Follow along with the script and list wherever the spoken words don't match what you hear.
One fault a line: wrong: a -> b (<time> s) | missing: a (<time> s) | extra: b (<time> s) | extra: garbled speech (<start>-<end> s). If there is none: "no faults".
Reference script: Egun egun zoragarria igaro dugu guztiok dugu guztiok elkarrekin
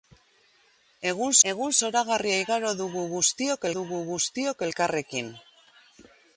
no faults